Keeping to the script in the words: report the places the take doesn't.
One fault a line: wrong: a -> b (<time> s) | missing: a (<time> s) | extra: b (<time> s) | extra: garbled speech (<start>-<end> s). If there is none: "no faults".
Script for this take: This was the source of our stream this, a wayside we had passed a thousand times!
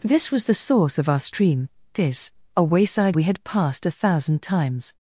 no faults